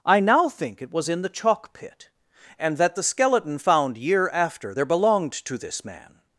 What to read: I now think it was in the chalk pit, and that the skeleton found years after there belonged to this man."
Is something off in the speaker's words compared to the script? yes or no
yes